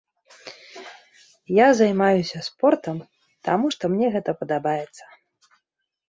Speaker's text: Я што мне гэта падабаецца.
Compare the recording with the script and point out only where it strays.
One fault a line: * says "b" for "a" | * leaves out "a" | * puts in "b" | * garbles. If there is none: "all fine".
* puts in "займаюся спортам таму"